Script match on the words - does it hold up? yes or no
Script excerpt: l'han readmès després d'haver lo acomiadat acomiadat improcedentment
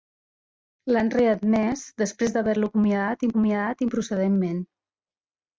yes